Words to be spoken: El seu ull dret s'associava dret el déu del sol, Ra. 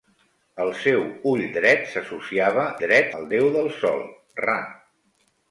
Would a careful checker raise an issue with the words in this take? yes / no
no